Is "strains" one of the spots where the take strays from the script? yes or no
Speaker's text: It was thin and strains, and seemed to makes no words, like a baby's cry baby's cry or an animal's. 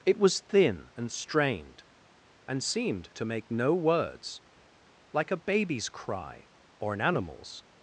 yes